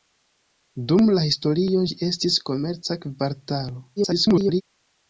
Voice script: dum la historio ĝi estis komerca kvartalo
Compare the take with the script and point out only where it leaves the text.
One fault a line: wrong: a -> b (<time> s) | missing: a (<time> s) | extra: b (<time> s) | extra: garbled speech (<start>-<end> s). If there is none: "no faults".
extra: garbled speech (4.0-4.6 s)